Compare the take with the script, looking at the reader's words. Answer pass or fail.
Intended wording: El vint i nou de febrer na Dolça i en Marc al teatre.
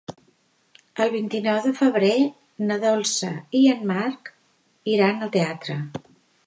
fail